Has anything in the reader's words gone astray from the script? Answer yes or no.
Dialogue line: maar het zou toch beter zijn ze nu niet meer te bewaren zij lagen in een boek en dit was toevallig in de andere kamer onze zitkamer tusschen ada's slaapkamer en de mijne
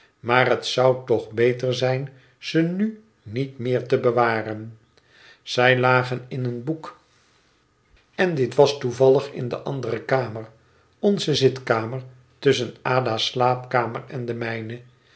no